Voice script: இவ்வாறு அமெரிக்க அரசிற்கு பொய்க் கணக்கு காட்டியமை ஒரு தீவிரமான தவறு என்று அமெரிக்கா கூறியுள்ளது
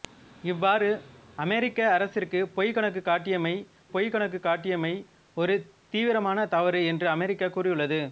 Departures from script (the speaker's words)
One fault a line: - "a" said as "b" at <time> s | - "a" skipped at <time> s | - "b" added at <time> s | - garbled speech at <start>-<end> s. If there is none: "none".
- "பொய்க் கணக்கு காட்டியமை" added at 3.9 s